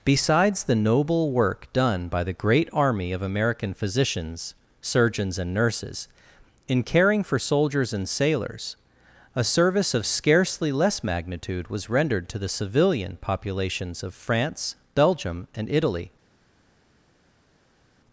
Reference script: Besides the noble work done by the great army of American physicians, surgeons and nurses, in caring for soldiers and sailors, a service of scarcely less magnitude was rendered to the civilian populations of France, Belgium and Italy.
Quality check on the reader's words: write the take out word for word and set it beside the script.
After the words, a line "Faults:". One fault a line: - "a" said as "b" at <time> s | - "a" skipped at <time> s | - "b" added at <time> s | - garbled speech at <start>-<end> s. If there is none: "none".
Besides the noble work done by the great army of American physicians, surgeons and nurses, in caring for soldiers and sailors, a service of scarcely less magnitude was rendered to the civilian populations of France, Belgium and Italy.
Faults:
none